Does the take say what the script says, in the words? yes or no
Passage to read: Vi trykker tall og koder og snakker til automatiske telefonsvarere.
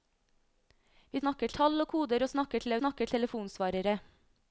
no